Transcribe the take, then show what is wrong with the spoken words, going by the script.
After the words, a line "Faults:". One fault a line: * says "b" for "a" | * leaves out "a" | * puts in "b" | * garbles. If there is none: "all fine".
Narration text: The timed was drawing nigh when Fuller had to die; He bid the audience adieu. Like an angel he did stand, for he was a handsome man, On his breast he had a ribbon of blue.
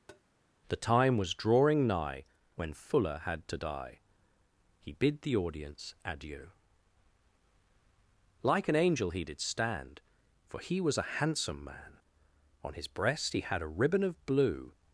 The time was drawing nigh when Fuller had to die; He bid the audience adieu. Like an angel he did stand, for he was a handsome man, On his breast he had a ribbon of blue.
Faults:
* says "time" for "timed"